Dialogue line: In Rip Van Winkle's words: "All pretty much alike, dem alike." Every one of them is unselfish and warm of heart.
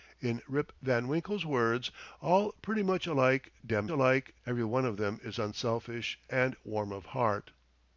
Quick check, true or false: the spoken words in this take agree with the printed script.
true